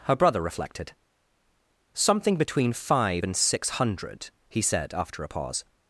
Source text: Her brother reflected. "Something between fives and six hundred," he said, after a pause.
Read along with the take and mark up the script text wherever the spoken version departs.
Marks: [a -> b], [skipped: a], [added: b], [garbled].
Her brother reflected. "Something between [fives -> five] and six hundred," he said, after a pause.